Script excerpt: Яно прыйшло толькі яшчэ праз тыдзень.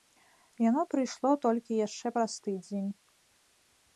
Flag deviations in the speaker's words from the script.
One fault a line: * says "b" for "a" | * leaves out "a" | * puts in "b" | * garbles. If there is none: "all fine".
all fine